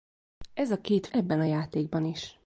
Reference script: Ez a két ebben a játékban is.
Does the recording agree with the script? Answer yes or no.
yes